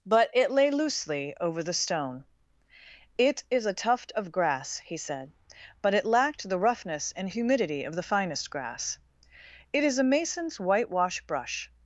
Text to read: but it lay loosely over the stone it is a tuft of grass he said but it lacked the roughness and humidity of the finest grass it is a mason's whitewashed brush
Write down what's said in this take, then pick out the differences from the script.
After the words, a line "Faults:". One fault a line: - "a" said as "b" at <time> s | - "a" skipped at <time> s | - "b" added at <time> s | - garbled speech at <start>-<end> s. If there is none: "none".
but it lay loosely over the stone it is a tuft of grass he said but it lacked the roughness and humidity of the finest grass it is a mason's whitewash brush
Faults:
- "whitewashed" said as "whitewash" at 10.6 s